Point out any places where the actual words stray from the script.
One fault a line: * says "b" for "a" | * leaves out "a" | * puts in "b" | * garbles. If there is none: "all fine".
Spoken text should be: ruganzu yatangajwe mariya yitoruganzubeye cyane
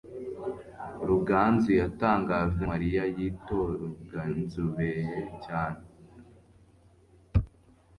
all fine